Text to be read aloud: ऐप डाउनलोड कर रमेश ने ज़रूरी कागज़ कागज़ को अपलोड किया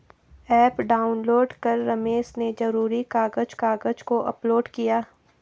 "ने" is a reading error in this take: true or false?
false